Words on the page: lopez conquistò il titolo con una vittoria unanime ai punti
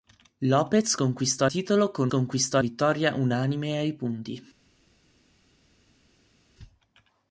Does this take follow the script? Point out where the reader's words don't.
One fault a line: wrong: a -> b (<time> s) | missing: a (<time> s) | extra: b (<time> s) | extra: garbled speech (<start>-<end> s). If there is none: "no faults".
missing: il (1.5 s)
wrong: una -> conquistò (2.1 s)